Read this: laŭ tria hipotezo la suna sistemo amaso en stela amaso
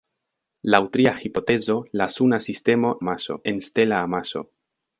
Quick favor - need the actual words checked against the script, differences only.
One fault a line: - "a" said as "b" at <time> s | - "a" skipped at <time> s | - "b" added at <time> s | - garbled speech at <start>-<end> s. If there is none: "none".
none